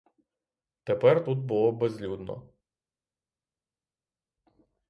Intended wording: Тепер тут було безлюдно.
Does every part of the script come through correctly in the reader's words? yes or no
yes